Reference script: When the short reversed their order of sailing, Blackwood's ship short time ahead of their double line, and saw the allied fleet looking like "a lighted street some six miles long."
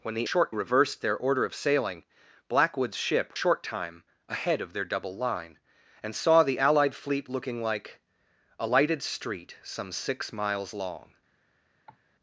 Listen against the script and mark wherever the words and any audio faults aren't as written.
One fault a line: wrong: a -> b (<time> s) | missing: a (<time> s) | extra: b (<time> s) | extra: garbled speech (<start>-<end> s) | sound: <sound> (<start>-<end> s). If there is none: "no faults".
sound: cough (11.9-12.0 s)